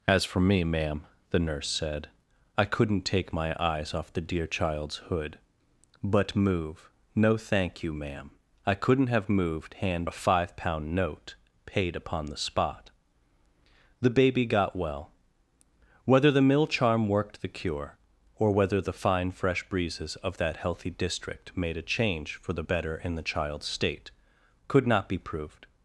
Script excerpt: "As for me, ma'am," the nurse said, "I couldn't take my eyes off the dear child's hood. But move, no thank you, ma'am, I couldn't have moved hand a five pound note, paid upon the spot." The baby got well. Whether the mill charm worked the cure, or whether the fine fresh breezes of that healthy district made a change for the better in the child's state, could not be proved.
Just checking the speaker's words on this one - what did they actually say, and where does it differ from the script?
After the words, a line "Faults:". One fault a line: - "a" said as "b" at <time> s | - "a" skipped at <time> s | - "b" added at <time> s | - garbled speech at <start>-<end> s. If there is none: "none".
"As for me, ma'am," the nurse said, "I couldn't take my eyes off the dear child's hood. But move, no thank you, ma'am, I couldn't have moved hand a five pound note, paid upon the spot." The baby got well. Whether the mill charm worked the cure, or whether the fine fresh breezes of that healthy district made a change for the better in the child's state, could not be proved.
Faults:
none